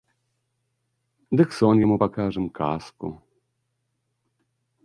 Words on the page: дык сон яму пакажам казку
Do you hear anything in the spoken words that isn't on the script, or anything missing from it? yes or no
no